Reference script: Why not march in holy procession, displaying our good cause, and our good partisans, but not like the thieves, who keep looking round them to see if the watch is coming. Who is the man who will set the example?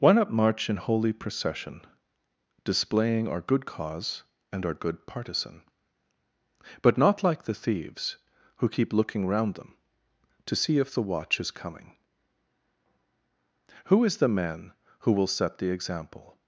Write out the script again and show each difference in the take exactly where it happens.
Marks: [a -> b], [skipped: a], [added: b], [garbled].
Why not march in holy procession, displaying our good cause, and our good [partisans, -> partisan] but not like the thieves, who keep looking round them to see if the watch is coming. Who is the man who will set the example?